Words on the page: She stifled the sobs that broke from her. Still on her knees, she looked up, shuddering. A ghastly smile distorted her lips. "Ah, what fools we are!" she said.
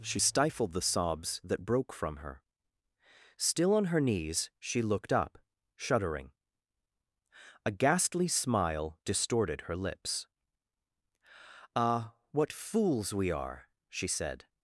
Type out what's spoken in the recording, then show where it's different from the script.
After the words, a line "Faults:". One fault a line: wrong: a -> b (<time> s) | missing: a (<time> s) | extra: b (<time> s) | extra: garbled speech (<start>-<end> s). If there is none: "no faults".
She stifled the sobs that broke from her. Still on her knees, she looked up, shuddering. A ghastly smile distorted her lips. "Ah, what fools we are!" she said.
Faults:
no faults